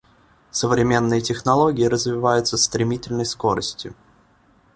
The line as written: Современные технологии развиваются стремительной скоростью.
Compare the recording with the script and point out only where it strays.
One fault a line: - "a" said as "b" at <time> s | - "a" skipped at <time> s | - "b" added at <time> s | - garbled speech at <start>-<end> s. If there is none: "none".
none